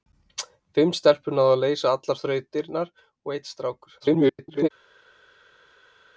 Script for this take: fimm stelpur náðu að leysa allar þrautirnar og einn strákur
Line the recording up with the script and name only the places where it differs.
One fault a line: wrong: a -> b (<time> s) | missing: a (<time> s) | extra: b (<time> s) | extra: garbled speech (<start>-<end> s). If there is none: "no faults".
extra: garbled speech (4.0-4.7 s)